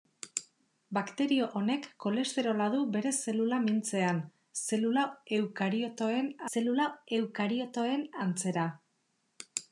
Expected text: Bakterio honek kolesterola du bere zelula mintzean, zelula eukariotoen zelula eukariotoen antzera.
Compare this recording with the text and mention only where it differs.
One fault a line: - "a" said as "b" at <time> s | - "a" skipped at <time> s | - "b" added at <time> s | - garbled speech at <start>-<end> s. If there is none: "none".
none